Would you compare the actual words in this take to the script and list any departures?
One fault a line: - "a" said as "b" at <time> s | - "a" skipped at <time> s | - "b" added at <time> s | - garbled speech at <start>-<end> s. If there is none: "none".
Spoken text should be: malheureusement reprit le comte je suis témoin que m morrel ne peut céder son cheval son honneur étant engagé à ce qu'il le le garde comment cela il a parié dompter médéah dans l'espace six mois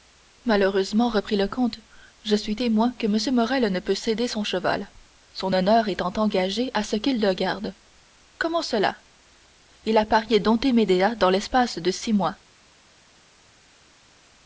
- "le" skipped at 7.3 s
- "de" added at 11.8 s